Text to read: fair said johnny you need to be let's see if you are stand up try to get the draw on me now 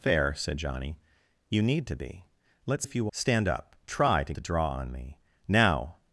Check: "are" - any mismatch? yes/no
yes